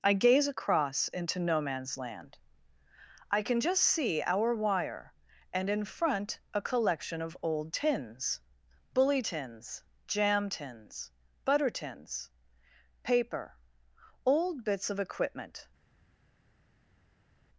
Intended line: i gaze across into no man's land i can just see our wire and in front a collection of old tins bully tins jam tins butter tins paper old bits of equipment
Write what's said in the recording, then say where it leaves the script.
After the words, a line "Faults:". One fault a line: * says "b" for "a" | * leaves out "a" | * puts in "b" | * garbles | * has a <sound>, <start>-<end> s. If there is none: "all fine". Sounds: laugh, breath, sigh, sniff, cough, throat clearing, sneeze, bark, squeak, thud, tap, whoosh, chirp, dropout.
i gaze across into no man's land i can just see our wire and in front a collection of old tins bully tins jam tins butter tins paper old bits of equipment
Faults:
all fine